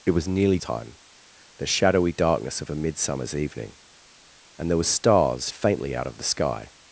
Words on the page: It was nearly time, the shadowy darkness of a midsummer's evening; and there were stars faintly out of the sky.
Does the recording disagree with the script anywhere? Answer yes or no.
no